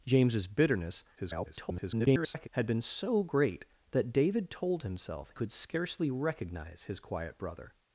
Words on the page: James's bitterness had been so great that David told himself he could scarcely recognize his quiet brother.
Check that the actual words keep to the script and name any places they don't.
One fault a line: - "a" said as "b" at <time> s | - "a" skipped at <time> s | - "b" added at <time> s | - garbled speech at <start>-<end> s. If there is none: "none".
- garbled speech at 1.2-2.5 s
- "he" skipped at 5.3 s